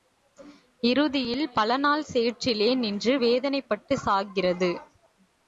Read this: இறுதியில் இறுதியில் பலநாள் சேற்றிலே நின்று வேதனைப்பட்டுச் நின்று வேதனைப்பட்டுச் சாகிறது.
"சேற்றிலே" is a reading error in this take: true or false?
false